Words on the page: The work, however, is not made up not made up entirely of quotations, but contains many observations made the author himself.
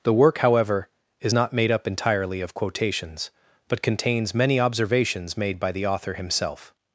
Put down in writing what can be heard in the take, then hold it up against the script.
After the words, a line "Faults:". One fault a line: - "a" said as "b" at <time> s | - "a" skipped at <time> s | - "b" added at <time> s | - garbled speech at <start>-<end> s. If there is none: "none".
The work, however, is not made up entirely of quotations, but contains many observations made by the author himself.
Faults:
- "not made up" skipped at 1.9 s
- "by" added at 5.6 s